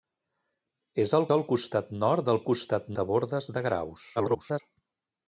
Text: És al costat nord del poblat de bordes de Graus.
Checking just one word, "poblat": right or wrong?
wrong